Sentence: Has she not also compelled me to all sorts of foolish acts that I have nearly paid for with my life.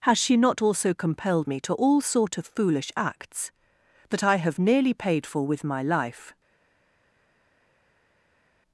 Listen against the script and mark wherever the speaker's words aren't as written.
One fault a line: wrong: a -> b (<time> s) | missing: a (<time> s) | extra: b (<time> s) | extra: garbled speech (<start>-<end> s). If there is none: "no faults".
wrong: sorts -> sort (2.0 s)